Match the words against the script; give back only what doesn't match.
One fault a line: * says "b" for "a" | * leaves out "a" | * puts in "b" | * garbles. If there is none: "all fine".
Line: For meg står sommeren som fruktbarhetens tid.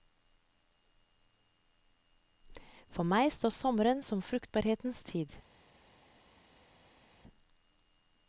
all fine